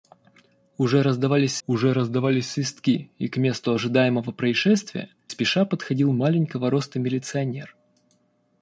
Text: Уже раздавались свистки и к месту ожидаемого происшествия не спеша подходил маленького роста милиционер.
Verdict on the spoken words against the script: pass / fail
fail